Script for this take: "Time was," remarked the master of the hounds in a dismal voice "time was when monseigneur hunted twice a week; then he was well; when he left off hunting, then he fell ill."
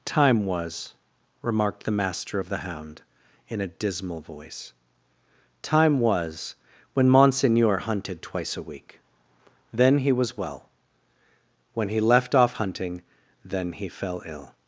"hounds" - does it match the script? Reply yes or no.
no